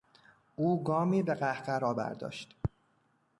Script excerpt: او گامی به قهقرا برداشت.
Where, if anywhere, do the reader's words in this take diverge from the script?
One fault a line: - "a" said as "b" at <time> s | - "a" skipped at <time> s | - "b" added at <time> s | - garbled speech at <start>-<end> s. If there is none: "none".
none